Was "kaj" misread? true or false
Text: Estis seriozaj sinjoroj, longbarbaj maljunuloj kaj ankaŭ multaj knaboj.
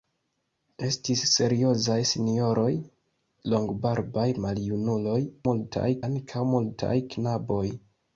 true